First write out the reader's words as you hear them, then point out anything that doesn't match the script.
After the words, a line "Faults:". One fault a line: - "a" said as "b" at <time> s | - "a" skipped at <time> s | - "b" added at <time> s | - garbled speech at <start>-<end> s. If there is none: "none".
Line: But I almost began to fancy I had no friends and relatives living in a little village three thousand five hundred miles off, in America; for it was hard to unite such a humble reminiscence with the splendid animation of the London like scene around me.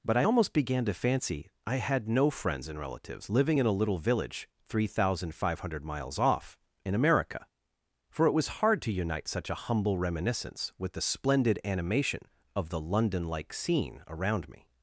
But I almost began to fancy I had no friends and relatives living in a little village three thousand five hundred miles off, in America; for it was hard to unite such a humble reminiscence with the splendid animation of the London like scene around me.
Faults:
none